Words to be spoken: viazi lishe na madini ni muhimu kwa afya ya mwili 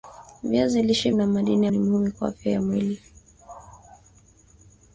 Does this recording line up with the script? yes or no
yes